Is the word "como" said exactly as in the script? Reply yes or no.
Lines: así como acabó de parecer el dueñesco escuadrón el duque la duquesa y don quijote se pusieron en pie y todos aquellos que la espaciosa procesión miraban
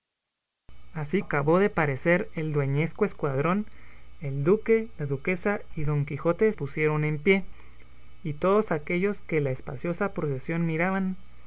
no